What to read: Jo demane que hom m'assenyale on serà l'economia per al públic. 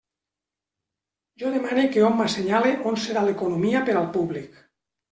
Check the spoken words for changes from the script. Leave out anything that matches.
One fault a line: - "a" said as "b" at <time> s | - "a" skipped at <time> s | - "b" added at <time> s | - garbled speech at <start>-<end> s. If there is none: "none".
none